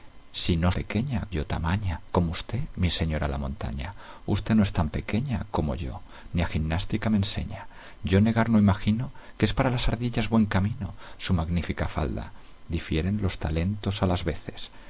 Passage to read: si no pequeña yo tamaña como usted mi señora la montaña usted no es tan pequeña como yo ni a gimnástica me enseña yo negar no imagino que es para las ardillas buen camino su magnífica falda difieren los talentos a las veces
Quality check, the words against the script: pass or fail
pass